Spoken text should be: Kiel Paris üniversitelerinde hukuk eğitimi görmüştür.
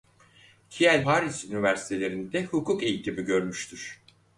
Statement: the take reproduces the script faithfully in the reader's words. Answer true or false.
true